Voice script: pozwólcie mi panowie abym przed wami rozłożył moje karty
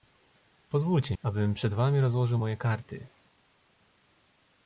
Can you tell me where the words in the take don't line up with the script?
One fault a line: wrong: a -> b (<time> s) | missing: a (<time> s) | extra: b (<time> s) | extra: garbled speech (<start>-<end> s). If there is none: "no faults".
missing: mi panowie (1.1 s)